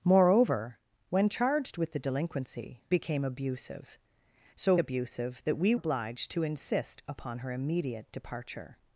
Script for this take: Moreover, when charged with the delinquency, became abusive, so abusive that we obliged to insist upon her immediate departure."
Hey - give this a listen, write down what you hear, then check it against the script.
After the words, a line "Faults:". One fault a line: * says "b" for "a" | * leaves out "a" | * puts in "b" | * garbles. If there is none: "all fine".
Moreover, when charged with the delinquency, became abusive, so abusive that we obliged to insist upon her immediate departure."
Faults:
all fine